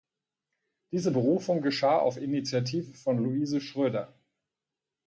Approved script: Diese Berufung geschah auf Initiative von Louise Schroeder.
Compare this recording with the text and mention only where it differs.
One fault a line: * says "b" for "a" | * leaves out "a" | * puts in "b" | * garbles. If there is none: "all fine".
all fine